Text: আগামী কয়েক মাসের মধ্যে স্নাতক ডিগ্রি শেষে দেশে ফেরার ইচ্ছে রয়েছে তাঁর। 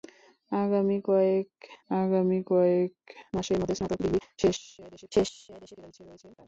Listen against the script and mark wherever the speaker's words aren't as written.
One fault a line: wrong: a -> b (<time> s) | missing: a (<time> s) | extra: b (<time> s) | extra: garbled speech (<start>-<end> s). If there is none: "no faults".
extra: আগামী কয়েক (1.9 s)
extra: শেষে দেশে (5.1 s)